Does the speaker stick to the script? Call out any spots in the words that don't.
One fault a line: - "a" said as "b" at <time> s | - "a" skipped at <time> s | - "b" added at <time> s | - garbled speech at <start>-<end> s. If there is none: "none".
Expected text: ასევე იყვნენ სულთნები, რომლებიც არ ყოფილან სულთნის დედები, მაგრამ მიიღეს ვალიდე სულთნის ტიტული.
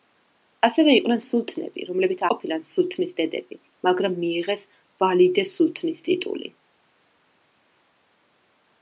- "არ" skipped at 2.2 s